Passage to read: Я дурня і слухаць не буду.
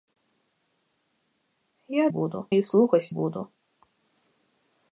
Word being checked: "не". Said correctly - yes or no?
no